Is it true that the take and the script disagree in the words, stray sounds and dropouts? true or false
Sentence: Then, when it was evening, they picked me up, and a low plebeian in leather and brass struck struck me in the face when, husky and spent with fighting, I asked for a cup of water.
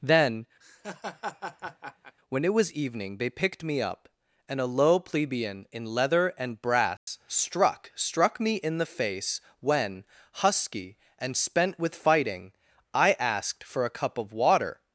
true